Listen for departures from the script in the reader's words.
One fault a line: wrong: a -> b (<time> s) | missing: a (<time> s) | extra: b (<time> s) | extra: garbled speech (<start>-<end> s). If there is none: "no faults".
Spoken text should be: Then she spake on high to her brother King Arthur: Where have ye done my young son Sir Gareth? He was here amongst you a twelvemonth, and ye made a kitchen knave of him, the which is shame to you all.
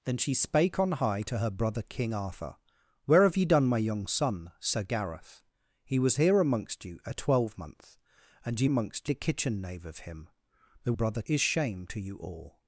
wrong: made -> amongst (8.6 s)
wrong: which -> brother (10.9 s)